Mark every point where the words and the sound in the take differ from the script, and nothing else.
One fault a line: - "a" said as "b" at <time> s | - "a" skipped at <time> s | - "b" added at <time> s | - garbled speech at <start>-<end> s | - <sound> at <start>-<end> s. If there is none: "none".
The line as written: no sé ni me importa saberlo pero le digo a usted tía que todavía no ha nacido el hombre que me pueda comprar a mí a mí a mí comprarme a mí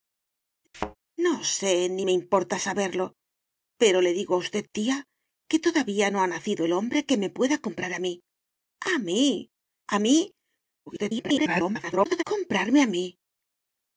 - thud at 0.7-1.0 s
- garbled speech at 10.9-12.2 s